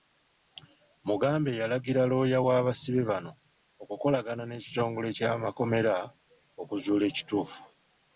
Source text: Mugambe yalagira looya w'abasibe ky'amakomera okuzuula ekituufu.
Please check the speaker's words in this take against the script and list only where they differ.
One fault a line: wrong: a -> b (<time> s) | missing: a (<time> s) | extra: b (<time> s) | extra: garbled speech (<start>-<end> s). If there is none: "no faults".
extra: bano okukolagana n'ekitongole (3.1 s)